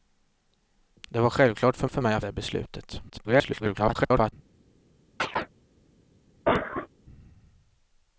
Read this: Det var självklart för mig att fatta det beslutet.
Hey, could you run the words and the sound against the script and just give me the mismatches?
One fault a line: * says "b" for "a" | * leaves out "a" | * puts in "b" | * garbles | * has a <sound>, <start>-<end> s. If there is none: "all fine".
* puts in "för"
* leaves out "fatta"
* garbles
* has a chirp, 5.2-5.5 s
* has a cough, 6.5-6.9 s